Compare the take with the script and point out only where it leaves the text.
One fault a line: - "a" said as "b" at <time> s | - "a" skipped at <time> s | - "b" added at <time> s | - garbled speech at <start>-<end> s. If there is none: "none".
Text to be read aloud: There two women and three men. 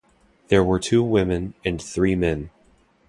- "were" added at 0.6 s